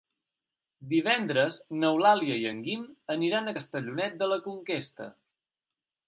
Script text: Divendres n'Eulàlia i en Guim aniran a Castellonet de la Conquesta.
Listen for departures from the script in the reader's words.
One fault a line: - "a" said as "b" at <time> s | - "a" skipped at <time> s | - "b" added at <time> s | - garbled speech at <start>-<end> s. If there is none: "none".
none